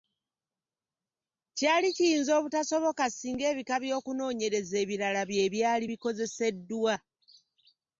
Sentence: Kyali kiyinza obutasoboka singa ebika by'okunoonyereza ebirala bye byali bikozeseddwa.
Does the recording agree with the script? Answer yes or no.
yes